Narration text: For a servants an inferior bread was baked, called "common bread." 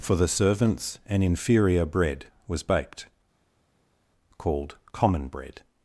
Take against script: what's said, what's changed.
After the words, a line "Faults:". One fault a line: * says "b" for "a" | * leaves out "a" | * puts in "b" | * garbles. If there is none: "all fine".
For the servants an inferior bread was baked, called "common bread."
Faults:
* says "the" for "a"